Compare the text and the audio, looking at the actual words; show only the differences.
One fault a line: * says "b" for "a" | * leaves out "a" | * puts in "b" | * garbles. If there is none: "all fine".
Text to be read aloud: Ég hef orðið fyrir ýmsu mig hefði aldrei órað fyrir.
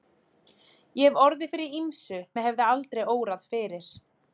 all fine